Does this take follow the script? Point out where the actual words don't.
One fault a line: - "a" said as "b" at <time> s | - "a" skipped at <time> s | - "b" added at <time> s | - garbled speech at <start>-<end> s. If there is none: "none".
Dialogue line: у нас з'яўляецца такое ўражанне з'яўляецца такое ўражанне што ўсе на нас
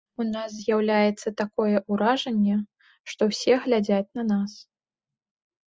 - "з'яўляецца такое ўражанне" skipped at 2.5 s
- "глядзяць" added at 3.7 s